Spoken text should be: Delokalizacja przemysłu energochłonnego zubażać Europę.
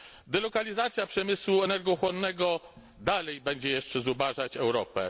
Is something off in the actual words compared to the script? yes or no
yes